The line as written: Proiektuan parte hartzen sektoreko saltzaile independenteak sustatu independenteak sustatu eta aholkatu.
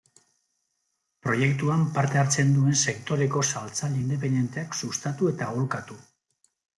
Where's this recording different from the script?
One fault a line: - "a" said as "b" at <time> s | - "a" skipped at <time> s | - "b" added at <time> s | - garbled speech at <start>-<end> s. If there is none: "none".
- "duen" added at 2.5 s
- "independenteak sustatu" skipped at 5.3 s